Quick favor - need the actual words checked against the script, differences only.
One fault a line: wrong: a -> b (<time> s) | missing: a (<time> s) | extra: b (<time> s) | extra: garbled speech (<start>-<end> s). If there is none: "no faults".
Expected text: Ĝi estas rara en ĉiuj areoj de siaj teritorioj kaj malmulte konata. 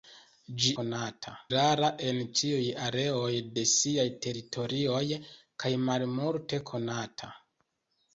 wrong: estas -> konata (0.8 s)